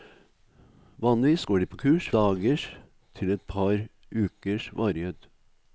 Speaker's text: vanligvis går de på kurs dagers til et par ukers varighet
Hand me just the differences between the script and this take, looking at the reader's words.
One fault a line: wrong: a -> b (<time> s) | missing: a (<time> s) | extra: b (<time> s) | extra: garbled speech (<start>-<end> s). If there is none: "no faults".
no faults